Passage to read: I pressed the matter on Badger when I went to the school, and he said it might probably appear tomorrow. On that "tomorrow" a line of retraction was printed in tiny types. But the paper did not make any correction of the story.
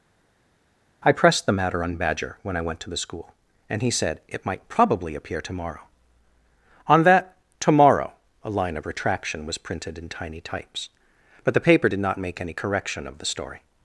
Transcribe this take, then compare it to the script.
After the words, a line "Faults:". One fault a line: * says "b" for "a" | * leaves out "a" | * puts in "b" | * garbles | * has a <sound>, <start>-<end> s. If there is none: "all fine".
I pressed the matter on Badger when I went to the school, and he said it might probably appear tomorrow. On that "tomorrow" a line of retraction was printed in tiny types. But the paper did not make any correction of the story.
Faults:
all fine